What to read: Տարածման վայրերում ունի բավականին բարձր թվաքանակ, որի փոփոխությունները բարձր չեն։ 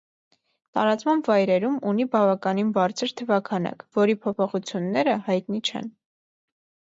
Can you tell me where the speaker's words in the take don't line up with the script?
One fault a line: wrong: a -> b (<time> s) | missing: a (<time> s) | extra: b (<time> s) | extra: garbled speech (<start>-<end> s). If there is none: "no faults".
wrong: բարձր -> հայտնի (5.3 s)